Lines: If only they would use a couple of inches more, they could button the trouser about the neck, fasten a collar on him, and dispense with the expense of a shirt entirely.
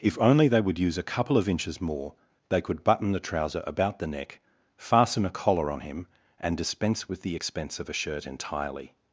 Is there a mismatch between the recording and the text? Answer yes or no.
no